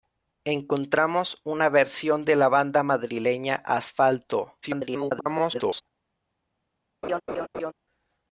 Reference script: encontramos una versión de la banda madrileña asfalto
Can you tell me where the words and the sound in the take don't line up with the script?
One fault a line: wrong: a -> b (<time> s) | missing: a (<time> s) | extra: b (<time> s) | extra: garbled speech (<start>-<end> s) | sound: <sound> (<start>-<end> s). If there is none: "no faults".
extra: garbled speech (4.6-5.8 s)
sound: laugh (7.0-7.7 s)